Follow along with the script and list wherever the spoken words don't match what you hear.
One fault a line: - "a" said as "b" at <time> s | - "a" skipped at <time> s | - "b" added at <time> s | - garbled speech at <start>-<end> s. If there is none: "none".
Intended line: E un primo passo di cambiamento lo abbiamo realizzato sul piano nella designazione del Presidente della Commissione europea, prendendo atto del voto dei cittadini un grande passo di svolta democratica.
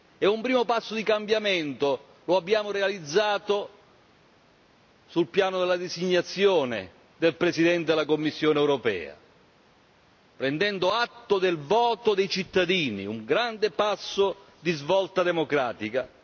- "nella" said as "della" at 5.6 s